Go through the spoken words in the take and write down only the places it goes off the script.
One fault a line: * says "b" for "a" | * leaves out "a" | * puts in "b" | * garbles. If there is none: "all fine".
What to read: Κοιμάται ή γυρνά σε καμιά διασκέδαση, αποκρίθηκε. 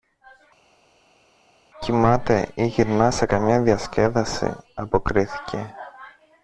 all fine